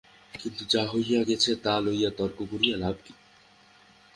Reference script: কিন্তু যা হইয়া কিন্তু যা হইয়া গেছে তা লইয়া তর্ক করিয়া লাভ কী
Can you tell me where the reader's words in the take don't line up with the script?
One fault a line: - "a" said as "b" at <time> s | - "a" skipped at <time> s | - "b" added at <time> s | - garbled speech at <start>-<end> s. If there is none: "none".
- "কিন্তু যা হইয়া" skipped at 1.2 s